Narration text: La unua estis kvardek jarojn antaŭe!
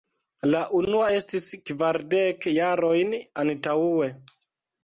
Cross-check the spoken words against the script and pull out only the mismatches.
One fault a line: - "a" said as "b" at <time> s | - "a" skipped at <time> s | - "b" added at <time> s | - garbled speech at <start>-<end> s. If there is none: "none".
none